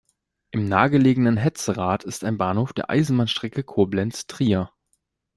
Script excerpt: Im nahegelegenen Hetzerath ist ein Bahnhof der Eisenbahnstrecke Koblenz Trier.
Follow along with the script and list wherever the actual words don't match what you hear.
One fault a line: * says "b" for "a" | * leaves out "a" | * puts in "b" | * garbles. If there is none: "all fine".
all fine